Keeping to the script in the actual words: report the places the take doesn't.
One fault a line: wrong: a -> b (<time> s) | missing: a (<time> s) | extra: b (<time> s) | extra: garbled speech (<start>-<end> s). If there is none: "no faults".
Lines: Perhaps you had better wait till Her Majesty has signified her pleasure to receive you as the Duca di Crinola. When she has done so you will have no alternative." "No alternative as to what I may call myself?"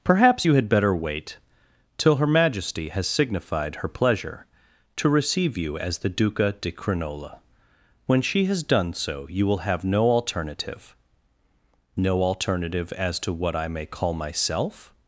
no faults